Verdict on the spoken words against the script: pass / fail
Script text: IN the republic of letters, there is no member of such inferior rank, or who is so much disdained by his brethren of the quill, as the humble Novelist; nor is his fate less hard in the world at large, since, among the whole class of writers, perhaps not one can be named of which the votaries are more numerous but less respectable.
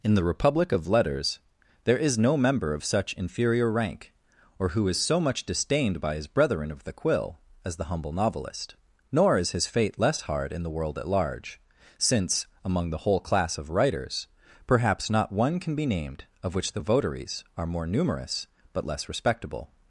pass